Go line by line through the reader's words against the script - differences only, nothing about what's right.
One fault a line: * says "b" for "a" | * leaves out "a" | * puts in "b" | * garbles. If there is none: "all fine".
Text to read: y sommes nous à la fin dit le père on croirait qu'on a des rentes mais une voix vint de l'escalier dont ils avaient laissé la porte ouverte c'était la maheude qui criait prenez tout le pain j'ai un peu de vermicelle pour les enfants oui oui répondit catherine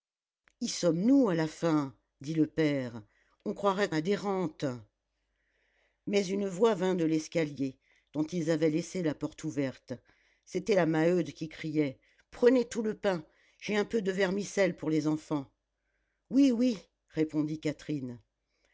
* leaves out "qu'on"